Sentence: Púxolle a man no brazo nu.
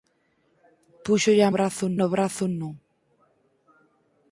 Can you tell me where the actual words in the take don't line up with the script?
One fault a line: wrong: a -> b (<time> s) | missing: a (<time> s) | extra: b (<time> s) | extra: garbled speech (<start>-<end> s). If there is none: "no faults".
wrong: man -> brazo (1.5 s)